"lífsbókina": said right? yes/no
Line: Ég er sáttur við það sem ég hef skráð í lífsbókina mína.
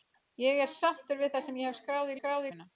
no